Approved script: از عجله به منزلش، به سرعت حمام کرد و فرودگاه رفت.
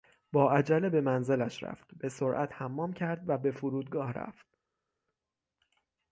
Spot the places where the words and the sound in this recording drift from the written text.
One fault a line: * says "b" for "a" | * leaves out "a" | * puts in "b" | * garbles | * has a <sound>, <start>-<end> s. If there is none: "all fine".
* says "با" for "از"
* puts in "رفت"
* puts in "به"